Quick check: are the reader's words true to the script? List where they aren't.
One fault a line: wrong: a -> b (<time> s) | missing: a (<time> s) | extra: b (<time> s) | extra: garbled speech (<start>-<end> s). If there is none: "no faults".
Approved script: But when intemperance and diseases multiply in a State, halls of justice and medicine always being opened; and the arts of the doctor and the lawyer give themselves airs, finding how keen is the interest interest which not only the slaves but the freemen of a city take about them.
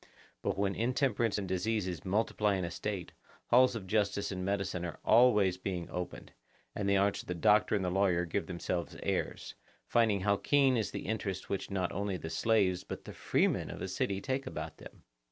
extra: are (4.8 s)
missing: interest (11.5 s)